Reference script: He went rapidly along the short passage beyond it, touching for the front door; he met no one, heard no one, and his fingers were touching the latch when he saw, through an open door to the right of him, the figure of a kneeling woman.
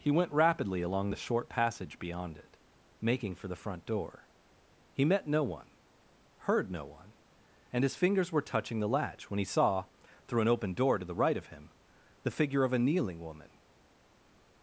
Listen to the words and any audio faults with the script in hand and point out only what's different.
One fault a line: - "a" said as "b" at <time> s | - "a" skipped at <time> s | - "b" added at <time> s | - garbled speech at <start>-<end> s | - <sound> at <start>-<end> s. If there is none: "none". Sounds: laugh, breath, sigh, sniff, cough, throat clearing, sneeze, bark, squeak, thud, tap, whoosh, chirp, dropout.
- "touching" said as "making" at 3.0 s